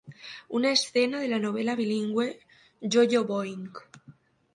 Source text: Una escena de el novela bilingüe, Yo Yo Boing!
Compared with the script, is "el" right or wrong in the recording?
wrong